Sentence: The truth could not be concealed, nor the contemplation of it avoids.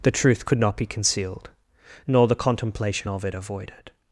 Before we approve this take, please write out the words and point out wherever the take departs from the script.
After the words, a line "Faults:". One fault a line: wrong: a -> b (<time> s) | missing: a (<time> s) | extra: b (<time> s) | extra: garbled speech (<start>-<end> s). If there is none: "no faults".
The truth could not be concealed, nor the contemplation of it avoided.
Faults:
wrong: avoids -> avoided (3.3 s)